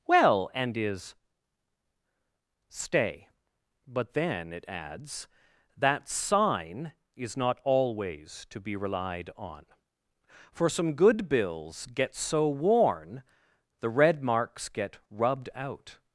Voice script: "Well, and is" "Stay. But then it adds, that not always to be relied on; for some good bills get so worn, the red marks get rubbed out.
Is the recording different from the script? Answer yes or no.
yes